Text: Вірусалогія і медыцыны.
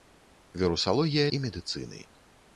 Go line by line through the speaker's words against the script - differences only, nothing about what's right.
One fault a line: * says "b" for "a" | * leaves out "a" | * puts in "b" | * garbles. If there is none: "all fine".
all fine